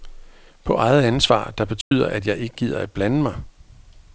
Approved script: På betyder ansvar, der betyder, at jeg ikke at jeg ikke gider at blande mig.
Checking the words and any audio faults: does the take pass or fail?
fail